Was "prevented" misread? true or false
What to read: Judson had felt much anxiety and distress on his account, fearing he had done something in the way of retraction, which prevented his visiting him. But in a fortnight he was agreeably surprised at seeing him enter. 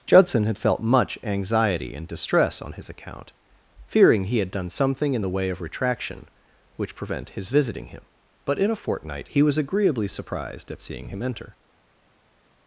true